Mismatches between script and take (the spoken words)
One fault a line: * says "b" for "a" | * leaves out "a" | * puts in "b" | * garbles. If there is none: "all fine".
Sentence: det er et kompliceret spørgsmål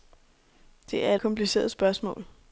all fine